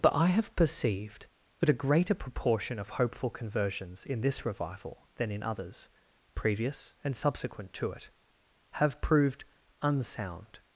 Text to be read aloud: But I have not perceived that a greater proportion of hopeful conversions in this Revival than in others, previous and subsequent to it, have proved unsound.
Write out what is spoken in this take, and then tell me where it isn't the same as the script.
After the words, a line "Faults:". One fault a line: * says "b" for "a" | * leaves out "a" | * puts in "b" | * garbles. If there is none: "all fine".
But I have perceived that a greater proportion of hopeful conversions in this Revival than in others, previous and subsequent to it, have proved unsound.
Faults:
* leaves out "not"